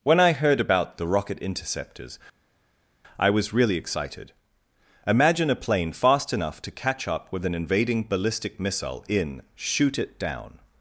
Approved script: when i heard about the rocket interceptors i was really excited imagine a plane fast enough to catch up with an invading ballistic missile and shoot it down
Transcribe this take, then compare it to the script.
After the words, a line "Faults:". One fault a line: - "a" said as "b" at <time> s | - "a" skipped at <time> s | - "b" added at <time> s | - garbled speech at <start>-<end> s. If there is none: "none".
when i heard about the rocket interceptors i was really excited imagine a plane fast enough to catch up with an invading ballistic missile in shoot it down
Faults:
- "and" said as "in" at 9.1 s